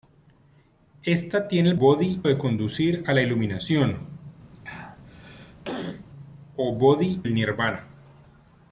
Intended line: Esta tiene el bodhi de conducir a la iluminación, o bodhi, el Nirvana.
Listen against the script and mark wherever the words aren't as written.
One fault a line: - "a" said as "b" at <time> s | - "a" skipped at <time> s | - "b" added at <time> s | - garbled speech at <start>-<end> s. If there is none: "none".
none